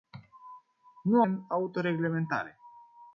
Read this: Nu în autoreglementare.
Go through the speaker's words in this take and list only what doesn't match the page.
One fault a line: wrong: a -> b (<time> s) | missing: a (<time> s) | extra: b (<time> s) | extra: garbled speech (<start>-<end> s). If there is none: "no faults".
no faults